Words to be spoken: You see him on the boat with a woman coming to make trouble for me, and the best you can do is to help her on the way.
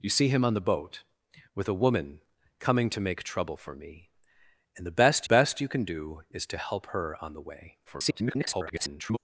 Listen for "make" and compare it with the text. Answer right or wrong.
right